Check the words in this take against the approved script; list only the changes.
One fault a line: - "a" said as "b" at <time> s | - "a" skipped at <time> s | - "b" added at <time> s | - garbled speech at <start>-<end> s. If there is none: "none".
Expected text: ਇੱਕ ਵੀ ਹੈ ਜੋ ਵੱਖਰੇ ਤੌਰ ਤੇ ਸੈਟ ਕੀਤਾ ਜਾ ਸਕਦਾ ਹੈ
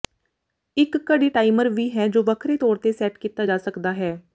- "ਘੜੀ ਟਾਈਮਰ" added at 1.1 s